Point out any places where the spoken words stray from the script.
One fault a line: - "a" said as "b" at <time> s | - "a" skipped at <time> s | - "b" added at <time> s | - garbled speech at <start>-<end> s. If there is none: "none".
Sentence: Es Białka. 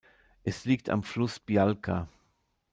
- "liegt am Fluss" added at 0.7 s